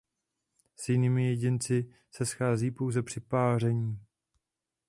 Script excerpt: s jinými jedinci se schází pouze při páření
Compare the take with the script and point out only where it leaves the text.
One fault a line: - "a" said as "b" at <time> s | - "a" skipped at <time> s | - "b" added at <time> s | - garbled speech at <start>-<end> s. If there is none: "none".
none